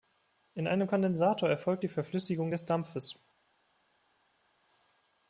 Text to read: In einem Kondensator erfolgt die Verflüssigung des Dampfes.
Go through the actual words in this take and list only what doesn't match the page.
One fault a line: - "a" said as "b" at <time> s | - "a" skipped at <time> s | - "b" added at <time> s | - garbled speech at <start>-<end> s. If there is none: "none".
none